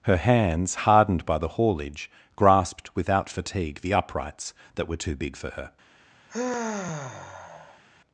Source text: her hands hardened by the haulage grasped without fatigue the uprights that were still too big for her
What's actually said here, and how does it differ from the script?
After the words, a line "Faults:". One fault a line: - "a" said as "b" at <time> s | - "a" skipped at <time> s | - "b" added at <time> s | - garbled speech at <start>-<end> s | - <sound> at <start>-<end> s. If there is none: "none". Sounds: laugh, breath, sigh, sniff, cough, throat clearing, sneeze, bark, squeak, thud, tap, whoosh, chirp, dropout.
her hands hardened by the haulage grasped without fatigue the uprights that were too big for her
Faults:
- "still" skipped at 5.0 s
- sigh at 6.3-7.8 s